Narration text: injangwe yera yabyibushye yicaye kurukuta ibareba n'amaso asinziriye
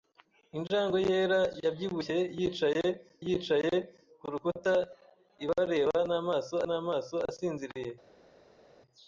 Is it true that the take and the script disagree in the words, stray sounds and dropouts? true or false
true